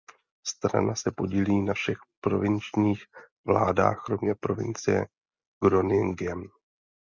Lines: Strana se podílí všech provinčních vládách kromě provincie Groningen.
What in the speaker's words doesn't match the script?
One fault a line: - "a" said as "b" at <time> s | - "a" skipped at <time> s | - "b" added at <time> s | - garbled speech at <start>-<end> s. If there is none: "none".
- "na" added at 1.6 s